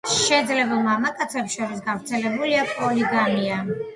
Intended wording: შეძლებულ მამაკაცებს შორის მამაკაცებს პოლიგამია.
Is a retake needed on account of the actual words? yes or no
yes